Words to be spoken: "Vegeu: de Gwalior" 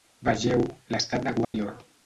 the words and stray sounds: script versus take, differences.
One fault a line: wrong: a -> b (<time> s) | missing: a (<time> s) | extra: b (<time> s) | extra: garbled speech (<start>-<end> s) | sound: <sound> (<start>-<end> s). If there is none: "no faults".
extra: l'estat (1.0 s)
sound: dropout (1.4-1.5 s)